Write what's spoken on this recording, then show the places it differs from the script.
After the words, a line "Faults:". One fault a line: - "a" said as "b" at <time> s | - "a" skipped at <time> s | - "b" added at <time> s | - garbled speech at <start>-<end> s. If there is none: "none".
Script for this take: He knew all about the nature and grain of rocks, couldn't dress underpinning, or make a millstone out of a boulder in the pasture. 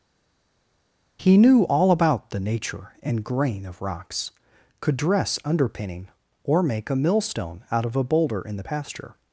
He knew all about the nature and grain of rocks, could dress underpinning, or make a millstone out of a boulder in the pasture.
Faults:
- "couldn't" said as "could" at 4.8 s